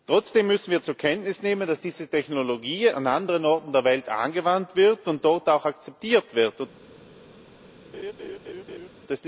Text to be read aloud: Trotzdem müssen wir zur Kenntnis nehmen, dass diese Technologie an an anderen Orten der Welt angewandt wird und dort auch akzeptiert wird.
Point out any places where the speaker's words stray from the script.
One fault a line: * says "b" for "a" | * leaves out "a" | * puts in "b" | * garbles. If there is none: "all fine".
* leaves out "an"